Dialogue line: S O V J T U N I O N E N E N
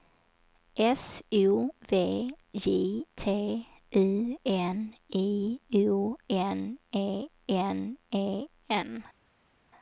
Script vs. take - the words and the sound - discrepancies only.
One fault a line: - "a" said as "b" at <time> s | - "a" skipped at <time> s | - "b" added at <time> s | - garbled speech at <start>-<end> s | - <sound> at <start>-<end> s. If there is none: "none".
none